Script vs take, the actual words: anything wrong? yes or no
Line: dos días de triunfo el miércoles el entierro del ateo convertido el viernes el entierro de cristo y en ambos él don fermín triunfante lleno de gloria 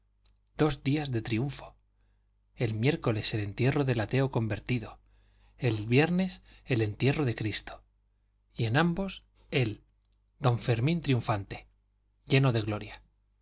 no